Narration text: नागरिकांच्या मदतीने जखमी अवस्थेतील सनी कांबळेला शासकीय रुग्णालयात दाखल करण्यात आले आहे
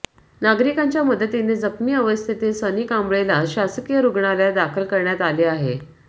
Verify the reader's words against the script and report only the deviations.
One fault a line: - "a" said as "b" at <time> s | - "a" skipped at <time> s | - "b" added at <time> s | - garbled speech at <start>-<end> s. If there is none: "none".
none